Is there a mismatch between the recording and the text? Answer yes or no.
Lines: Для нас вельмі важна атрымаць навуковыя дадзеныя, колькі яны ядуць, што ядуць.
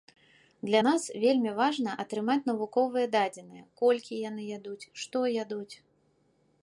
no